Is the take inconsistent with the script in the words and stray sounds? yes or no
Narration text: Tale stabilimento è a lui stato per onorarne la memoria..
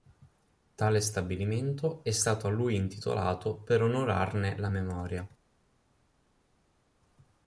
yes